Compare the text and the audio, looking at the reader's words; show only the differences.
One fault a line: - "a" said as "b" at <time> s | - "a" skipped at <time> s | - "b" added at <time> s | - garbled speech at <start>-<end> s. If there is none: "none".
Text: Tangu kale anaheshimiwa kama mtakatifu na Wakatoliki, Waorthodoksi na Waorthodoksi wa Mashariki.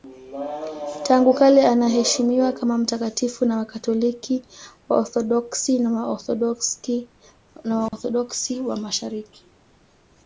none